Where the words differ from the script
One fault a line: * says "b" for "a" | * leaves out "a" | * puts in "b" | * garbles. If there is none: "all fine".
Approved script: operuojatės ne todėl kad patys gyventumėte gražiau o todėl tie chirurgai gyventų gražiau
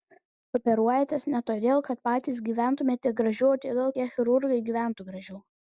all fine